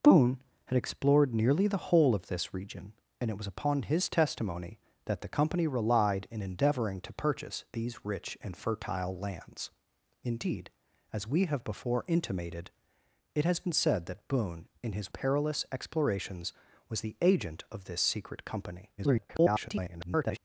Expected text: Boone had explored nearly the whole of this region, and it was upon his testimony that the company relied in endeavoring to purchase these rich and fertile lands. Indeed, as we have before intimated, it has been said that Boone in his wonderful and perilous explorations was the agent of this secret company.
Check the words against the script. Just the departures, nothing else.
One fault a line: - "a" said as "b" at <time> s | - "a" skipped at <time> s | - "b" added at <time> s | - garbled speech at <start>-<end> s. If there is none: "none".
- "wonderful and" skipped at 15.1 s
- garbled speech at 19.0-20.4 s